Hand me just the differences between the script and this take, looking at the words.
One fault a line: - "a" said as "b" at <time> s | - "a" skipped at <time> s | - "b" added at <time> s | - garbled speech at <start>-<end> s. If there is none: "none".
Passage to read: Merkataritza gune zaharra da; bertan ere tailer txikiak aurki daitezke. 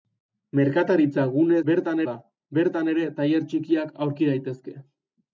- "zaharra" said as "bertan" at 1.7 s